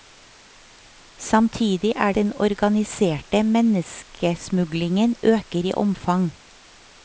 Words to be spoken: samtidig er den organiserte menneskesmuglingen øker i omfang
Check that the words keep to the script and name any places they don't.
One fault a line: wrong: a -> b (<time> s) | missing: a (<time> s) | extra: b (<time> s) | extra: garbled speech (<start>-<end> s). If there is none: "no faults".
no faults